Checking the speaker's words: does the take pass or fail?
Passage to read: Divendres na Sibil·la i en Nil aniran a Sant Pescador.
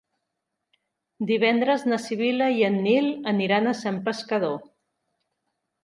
pass